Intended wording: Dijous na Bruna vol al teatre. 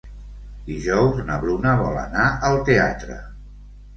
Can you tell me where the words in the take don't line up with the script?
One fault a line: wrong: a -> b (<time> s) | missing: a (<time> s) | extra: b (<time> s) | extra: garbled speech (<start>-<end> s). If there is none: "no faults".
extra: anar (2.0 s)